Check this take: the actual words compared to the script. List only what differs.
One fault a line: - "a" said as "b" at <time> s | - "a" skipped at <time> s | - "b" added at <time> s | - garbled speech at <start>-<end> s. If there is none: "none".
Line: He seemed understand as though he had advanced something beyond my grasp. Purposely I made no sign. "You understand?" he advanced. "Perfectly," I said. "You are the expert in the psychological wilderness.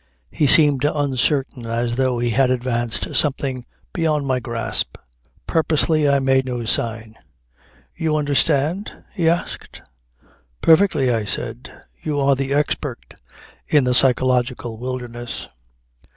- "understand" said as "uncertain" at 0.8 s
- "advanced" said as "asked" at 9.3 s